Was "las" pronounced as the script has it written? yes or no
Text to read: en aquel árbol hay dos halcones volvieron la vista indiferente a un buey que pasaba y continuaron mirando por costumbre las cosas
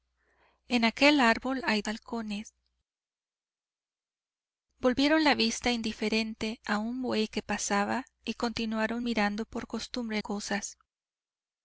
no